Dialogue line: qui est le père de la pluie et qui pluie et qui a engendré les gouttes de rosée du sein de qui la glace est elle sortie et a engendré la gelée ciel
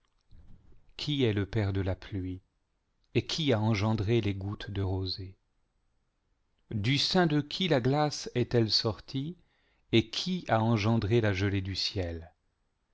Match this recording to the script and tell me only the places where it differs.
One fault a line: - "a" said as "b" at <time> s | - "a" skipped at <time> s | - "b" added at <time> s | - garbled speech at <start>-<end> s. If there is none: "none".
- "pluie et qui" skipped at 3.5 s
- "qui" added at 10.1 s
- "du" added at 11.6 s